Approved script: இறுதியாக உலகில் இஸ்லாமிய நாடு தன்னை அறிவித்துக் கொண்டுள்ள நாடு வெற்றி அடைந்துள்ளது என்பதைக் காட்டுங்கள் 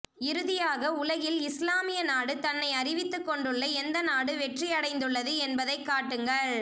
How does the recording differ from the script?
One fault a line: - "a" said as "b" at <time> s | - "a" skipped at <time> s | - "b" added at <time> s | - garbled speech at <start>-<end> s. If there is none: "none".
- "எந்த" added at 3.8 s